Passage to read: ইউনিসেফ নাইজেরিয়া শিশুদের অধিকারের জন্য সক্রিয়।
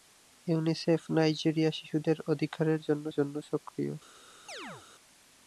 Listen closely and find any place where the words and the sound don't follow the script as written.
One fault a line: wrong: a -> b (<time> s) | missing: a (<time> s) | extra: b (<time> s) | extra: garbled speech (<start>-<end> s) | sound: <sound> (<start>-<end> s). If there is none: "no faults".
extra: জন্য (3.1 s)
sound: chirp (4.5-4.9 s)